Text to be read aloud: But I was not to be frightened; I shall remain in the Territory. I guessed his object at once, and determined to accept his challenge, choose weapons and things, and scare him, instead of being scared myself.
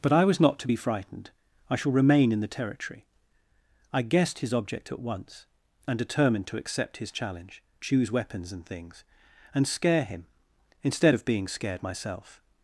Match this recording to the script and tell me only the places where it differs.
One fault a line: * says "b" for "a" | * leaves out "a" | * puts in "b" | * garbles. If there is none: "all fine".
all fine